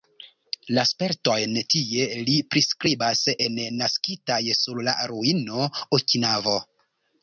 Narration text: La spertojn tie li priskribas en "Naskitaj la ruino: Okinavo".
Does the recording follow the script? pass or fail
fail